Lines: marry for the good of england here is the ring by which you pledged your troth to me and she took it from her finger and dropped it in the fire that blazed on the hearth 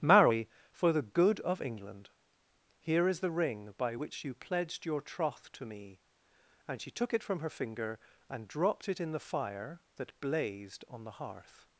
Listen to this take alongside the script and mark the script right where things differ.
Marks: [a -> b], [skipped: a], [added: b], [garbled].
marry for the good of england here is the ring by which you pledged your troth to me and she took it from her finger and dropped it in the fire that blazed on the hearth